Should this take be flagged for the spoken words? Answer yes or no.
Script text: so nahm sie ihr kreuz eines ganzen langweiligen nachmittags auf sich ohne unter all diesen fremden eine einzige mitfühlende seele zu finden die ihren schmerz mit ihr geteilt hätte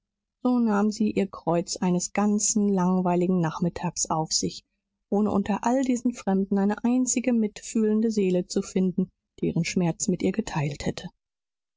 no